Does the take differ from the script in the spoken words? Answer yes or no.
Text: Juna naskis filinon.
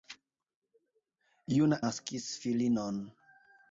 no